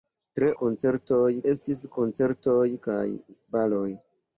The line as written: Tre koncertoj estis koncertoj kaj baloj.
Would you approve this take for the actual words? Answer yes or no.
yes